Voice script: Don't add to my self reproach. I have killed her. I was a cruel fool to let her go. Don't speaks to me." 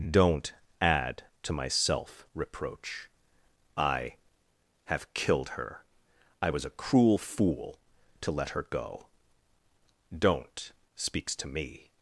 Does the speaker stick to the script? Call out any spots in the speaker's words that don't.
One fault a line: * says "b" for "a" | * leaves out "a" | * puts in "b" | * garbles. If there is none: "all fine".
all fine